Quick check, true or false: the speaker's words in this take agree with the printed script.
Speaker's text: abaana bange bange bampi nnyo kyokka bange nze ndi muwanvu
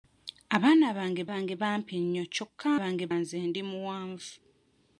true